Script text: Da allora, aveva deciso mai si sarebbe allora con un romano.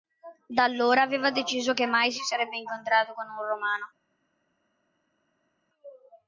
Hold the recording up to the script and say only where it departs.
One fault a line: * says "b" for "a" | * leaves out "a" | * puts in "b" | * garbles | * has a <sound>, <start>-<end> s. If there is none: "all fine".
* puts in "che"
* says "incontrato" for "allora"